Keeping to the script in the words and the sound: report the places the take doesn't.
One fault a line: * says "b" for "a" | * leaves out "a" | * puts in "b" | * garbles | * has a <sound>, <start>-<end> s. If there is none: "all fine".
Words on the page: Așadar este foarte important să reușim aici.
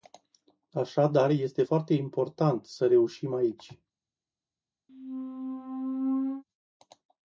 * has a squeak, 4.9-6.4 s